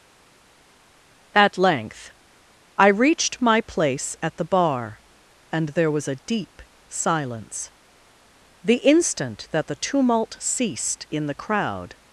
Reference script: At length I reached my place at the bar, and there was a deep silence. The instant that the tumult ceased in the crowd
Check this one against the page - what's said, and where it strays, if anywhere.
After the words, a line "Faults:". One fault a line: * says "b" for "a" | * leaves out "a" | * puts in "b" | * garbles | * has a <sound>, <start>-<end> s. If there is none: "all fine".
At length I reached my place at the bar, and there was a deep silence. The instant that the tumult ceased in the crowd
Faults:
all fine